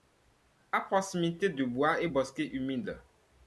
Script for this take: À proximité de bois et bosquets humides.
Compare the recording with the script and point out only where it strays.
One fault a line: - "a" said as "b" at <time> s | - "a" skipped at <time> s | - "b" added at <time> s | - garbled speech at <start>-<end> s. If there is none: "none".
none